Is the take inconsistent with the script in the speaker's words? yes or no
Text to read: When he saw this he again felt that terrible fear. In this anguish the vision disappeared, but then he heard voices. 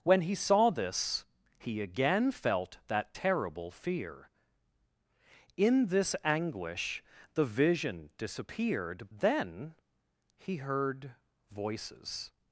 yes